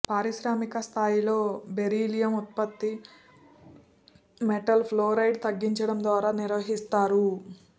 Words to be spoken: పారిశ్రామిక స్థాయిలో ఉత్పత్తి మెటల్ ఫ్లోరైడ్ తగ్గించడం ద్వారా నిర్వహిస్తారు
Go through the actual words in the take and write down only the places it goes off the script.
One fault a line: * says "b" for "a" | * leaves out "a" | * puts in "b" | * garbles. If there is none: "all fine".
* puts in "బెరీలియం"